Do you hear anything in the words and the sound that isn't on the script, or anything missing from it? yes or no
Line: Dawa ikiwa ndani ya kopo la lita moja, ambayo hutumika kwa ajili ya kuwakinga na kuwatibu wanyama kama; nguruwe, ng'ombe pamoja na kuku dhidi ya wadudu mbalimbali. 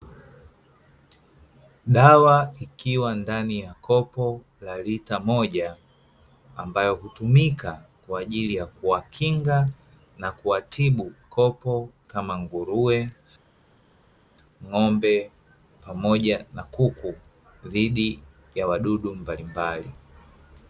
yes